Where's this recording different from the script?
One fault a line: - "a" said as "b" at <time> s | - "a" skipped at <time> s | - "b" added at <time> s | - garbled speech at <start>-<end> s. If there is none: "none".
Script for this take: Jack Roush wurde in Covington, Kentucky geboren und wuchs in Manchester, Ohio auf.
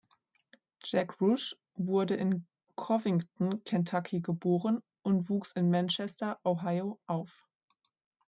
none